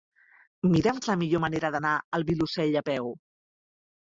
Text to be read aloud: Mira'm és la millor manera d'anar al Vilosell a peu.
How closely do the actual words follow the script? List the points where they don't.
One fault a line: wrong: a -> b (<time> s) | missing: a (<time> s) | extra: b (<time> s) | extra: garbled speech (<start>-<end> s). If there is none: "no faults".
no faults